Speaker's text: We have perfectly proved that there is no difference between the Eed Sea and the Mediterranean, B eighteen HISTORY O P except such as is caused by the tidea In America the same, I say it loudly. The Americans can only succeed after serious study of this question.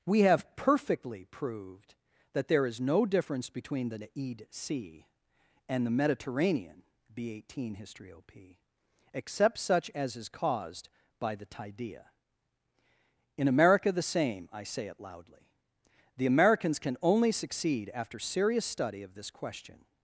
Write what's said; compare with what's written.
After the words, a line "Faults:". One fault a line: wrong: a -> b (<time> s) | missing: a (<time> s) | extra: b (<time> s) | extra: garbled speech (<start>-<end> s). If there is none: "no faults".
We have perfectly proved that there is no difference between the Eed Sea and the Mediterranean, B eighteen HISTORY O P except such as is caused by the tidea In America the same, I say it loudly. The Americans can only succeed after serious study of this question.
Faults:
no faults